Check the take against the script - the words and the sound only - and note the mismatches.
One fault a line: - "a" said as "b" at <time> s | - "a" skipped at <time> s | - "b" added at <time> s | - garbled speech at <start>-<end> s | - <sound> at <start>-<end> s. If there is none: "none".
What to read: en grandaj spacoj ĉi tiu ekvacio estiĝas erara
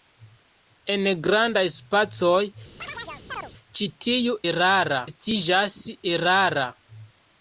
- chirp at 2.8-3.5 s
- "ekvacio" said as "erara" at 4.5 s